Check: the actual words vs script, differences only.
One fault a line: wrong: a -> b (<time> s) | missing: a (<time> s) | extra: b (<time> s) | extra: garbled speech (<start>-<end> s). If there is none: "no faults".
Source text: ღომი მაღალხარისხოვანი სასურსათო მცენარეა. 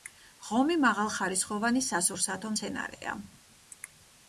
no faults